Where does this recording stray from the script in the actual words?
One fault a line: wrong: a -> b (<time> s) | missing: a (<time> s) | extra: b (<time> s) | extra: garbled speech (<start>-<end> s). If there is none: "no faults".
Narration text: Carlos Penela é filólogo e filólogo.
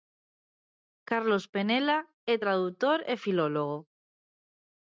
wrong: filólogo -> tradutor (2.4 s)